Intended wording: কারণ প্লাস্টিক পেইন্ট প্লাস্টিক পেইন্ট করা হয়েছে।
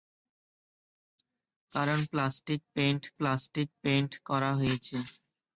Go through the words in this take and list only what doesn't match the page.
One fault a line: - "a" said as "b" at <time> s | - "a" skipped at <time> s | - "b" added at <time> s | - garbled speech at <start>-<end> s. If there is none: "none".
none